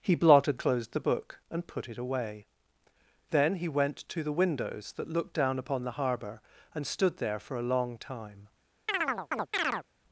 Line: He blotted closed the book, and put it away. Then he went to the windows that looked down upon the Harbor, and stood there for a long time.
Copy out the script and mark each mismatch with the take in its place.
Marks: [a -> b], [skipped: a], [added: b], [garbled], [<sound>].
He blotted closed the book, and put it away. Then he went to the windows that looked down upon the Harbor, and stood there for a long time. [chirp]